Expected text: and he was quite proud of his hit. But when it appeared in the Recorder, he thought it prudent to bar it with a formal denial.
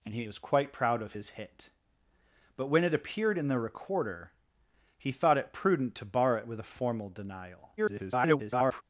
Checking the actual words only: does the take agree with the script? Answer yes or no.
no